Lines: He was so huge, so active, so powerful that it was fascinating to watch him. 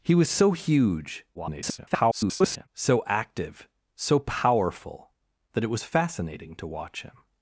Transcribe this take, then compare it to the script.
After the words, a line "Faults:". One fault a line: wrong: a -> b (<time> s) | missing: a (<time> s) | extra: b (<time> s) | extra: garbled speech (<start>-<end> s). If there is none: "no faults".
He was so huge, [garbled] so active, so powerful that it was fascinating to watch him.
Faults:
extra: garbled speech (1.3-2.7 s)